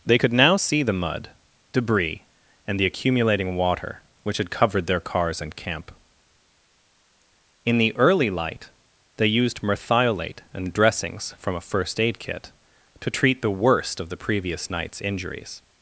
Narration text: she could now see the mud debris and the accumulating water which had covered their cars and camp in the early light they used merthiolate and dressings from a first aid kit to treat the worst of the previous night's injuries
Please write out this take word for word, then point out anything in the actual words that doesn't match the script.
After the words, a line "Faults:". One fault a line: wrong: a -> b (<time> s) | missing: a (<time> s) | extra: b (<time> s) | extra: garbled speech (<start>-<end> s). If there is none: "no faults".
they could now see the mud debris and the accumulating water which had covered their cars and camp in the early light they used merthiolate and dressings from a first aid kit to treat the worst of the previous night's injuries
Faults:
wrong: she -> they (0.1 s)